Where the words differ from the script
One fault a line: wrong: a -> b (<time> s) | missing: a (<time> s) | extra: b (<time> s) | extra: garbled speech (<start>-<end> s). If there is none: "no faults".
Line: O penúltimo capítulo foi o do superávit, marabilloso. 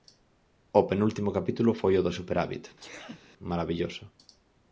no faults